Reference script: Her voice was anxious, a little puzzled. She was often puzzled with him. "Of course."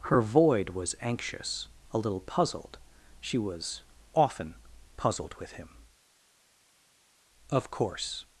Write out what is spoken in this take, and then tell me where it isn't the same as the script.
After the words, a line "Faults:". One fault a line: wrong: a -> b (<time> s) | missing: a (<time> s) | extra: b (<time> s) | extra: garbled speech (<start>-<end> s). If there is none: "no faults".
Her void was anxious, a little puzzled. She was often puzzled with him. "Of course."
Faults:
wrong: voice -> void (0.2 s)